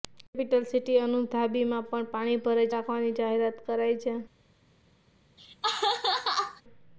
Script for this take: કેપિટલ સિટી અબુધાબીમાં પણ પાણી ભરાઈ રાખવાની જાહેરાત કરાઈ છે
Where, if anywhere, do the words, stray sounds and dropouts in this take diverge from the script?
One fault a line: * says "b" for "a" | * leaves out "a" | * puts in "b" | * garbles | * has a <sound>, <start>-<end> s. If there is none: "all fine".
* has a laugh, 5.4-6.6 s